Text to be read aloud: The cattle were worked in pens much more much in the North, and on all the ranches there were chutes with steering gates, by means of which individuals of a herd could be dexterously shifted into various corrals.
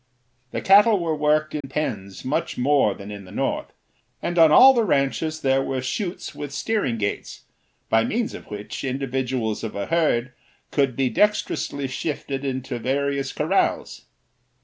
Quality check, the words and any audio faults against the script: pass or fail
fail